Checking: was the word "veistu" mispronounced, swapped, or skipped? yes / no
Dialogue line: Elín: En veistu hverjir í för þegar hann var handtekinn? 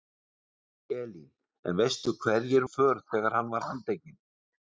no